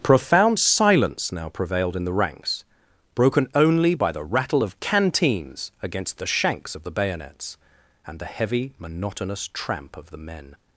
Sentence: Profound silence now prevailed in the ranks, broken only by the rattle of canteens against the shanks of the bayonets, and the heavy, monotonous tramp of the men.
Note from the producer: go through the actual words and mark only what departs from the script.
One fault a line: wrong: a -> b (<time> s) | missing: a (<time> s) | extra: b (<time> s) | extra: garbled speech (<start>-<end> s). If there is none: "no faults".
no faults